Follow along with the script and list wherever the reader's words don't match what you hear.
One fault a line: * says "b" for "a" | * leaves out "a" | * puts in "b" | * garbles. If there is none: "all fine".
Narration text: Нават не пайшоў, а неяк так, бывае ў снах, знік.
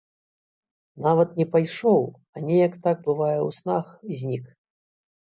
all fine